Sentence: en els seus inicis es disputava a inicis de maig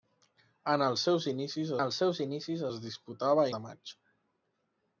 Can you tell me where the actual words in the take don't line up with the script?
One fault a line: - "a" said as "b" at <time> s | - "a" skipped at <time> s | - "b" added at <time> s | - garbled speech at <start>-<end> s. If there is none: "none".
- "els seus inicis" added at 1.8 s
- "inicis" skipped at 3.5 s